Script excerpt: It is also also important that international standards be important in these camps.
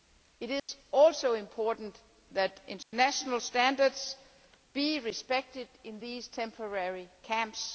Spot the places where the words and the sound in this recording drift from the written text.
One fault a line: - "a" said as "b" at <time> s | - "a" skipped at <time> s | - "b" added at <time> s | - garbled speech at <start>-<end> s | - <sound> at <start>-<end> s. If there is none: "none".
- dropout at 0.6-0.7 s
- "also" skipped at 1.3 s
- dropout at 2.8-2.9 s
- "important" said as "respected" at 5.0 s
- "temporary" added at 6.2 s